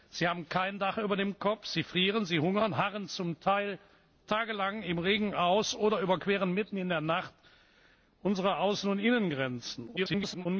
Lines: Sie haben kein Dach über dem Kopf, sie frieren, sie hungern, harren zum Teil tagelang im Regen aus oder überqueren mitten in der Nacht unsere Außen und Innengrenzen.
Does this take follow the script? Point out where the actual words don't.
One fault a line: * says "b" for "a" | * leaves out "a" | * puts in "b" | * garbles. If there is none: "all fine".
* garbles